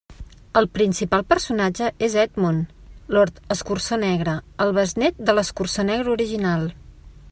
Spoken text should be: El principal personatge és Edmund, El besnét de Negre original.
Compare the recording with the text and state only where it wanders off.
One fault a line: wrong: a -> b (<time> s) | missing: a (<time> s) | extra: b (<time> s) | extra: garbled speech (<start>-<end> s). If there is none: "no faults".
extra: Lord Escurçó Negre (3.2 s)
extra: l'Escurçó (5.4 s)